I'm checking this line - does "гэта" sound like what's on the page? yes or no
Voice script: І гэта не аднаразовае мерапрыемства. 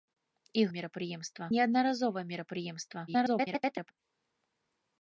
no